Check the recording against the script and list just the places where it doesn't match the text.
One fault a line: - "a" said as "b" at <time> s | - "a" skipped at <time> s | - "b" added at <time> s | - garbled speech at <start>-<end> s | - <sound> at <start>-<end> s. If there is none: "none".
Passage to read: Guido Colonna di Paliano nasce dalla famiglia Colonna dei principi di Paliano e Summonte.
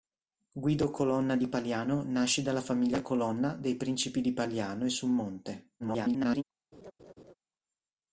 - garbled speech at 5.8-6.4 s
- laugh at 6.7-7.3 s